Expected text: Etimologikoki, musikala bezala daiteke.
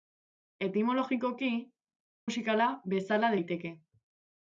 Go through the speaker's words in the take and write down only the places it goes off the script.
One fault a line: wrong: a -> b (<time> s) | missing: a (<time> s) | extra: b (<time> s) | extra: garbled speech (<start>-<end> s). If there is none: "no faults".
no faults